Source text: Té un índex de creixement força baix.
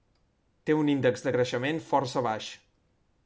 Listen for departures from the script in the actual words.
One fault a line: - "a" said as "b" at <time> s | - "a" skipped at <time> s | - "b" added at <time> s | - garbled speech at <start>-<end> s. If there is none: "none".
none